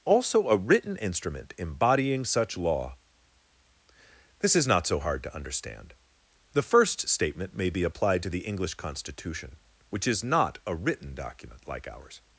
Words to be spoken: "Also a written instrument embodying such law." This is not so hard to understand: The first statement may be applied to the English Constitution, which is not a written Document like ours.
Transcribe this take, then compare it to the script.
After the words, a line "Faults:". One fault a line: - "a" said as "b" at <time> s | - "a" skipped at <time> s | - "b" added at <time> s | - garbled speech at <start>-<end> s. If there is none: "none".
"Also a written instrument embodying such law." This is not so hard to understand: The first statement may be applied to the English Constitution, which is not a written Document like ours.
Faults:
none